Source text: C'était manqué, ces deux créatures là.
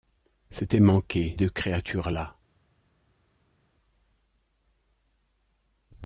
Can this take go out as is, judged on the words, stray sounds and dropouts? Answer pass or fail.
fail